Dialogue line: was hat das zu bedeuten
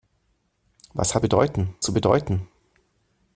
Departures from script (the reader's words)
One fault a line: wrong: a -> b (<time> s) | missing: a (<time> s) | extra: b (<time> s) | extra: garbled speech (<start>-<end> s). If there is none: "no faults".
wrong: das -> bedeuten (1.2 s)